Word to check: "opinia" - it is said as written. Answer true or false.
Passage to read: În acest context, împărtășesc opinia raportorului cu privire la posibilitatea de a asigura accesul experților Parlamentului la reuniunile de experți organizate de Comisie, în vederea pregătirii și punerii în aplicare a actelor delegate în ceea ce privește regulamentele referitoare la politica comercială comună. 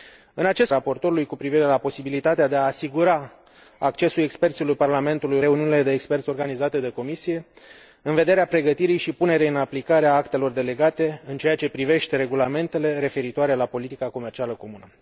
false